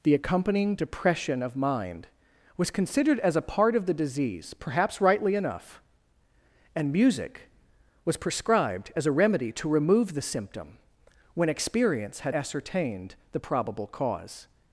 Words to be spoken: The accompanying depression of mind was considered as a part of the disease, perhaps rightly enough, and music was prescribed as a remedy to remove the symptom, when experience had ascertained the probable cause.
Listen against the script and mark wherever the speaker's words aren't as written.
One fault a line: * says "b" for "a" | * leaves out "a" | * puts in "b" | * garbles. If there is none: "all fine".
all fine